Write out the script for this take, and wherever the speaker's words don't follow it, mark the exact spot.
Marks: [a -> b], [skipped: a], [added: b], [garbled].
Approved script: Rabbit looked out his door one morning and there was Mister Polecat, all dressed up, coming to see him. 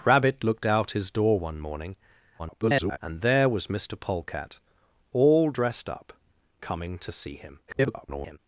Rabbit looked out his door one morning [garbled] and there was Mister Polecat, all dressed up, coming to see him. [garbled]